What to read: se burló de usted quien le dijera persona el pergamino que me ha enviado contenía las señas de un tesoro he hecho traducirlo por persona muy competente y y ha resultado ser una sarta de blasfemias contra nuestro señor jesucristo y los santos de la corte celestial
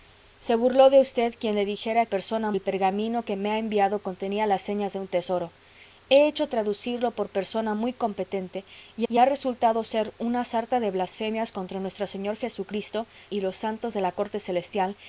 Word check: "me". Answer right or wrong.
right